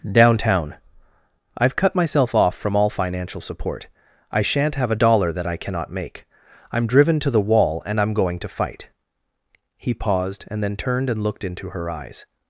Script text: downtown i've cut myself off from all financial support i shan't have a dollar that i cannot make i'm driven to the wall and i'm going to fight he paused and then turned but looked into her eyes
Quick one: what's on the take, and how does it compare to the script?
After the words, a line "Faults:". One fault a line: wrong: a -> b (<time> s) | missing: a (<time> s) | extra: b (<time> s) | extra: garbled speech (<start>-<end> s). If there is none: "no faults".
downtown i've cut myself off from all financial support i shan't have a dollar that i cannot make i'm driven to the wall and i'm going to fight he paused and then turned and looked into her eyes
Faults:
wrong: but -> and (11.1 s)